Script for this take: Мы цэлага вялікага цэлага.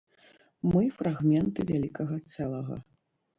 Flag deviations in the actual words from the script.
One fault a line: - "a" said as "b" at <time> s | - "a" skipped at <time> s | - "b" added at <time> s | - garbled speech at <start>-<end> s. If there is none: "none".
- "цэлага" said as "фрагменты" at 1.0 s